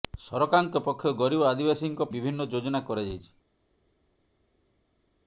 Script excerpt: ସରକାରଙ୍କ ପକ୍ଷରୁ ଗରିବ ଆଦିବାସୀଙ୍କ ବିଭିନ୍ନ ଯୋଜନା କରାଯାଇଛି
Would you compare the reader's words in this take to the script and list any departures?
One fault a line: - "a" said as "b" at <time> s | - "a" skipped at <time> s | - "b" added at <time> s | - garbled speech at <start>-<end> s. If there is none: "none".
none